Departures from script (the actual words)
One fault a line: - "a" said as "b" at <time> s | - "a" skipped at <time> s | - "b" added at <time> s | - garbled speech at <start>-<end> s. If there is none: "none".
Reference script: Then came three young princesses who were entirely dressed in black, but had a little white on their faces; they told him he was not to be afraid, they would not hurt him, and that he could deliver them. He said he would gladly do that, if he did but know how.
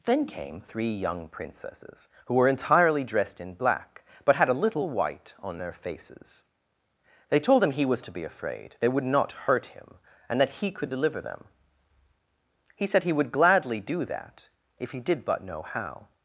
- "not" skipped at 8.0 s